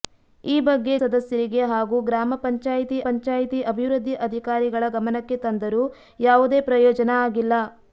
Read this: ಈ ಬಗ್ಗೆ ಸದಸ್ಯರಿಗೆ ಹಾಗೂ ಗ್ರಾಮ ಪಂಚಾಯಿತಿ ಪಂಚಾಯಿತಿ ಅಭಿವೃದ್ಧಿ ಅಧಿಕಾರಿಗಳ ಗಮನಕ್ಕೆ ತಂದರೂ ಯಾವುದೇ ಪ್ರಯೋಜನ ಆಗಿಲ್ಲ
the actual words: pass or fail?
pass